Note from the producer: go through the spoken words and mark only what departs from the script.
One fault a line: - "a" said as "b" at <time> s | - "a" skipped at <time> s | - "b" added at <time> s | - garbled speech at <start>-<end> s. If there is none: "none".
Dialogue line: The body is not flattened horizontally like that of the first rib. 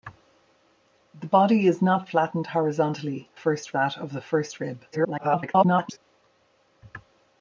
- "like" said as "first" at 3.3 s
- garbled speech at 4.9-6.0 s